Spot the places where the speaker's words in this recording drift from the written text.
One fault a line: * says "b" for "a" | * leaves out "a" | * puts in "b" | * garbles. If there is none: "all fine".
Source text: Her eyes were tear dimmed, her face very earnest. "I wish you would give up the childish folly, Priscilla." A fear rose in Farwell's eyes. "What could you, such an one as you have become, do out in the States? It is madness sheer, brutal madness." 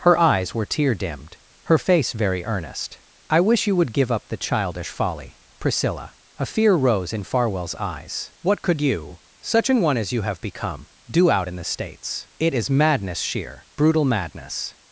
all fine